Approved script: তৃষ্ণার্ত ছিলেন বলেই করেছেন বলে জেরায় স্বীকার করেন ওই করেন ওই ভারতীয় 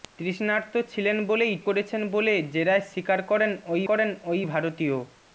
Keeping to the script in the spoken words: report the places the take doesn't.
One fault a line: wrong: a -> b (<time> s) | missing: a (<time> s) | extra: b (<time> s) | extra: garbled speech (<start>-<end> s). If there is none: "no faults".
no faults